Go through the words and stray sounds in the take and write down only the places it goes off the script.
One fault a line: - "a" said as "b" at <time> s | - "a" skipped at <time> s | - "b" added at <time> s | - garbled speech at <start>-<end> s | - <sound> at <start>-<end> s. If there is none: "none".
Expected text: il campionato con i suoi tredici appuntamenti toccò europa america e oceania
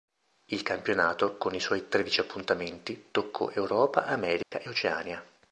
- dropout at 4.4-4.5 s